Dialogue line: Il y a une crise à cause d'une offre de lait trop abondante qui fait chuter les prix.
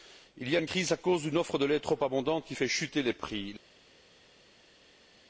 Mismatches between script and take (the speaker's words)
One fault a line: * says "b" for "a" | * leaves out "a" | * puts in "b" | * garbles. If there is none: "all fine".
all fine